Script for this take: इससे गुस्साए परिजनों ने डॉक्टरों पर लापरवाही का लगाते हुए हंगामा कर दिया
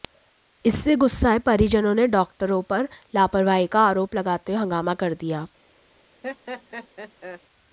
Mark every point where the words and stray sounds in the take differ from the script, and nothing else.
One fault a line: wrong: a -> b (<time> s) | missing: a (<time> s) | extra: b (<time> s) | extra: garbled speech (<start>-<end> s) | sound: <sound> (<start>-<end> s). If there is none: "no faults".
extra: आरोप (3.8 s)
sound: laugh (6.2-7.4 s)